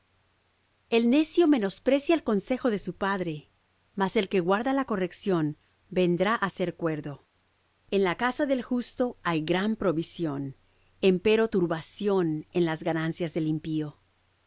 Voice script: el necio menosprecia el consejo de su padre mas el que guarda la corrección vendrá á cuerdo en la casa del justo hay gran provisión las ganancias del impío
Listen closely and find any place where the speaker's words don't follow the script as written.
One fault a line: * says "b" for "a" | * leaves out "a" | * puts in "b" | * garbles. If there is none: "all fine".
* puts in "ser"
* puts in "empero turbación en"